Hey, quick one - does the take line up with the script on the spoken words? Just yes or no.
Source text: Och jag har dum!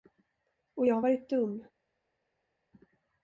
no